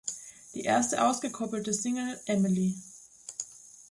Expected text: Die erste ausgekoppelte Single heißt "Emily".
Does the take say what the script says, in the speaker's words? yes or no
no